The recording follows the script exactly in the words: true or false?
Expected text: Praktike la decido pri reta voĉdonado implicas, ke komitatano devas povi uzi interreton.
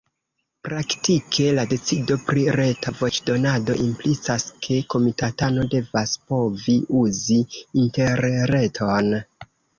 true